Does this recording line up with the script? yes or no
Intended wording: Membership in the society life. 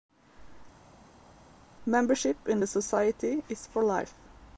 no